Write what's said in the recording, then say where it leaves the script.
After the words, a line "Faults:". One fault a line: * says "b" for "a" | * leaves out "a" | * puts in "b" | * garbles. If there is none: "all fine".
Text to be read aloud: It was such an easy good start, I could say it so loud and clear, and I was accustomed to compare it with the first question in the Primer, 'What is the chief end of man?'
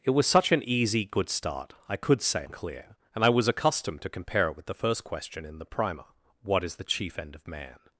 It was such an easy good start, I could say and clear, and I was accustomed to compare it with the first question in the Primer, 'What is the chief end of man?'
Faults:
* leaves out "it so loud"